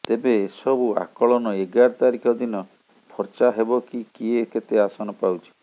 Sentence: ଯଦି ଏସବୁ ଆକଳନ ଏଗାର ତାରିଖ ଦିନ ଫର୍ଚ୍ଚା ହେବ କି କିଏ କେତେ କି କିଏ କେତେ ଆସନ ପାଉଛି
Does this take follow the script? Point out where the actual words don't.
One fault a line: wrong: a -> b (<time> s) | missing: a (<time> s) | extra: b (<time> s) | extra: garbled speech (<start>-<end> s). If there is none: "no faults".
wrong: ଯଦି -> ତେବେ (0.1 s)
missing: କି କିଏ କେତେ (4.8 s)